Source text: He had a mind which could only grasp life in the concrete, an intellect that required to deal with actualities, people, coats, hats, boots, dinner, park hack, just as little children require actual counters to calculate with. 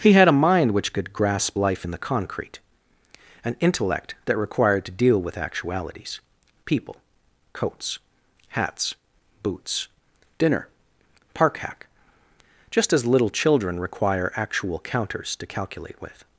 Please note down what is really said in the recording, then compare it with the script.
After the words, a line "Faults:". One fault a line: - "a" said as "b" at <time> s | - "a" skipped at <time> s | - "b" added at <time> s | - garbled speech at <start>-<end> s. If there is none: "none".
He had a mind which could grasp life in the concrete, an intellect that required to deal with actualities, people, coats, hats, boots, dinner, park hack, just as little children require actual counters to calculate with.
Faults:
- "only" skipped at 1.1 s